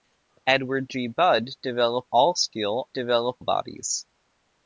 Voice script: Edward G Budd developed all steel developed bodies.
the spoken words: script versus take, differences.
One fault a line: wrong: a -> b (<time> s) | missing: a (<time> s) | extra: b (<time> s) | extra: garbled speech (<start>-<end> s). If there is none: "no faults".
no faults